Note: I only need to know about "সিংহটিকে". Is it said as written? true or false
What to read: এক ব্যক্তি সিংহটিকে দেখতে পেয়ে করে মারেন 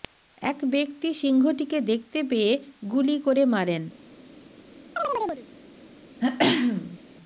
true